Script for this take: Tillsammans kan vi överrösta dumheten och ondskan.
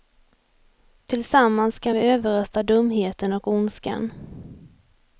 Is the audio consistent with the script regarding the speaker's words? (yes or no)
yes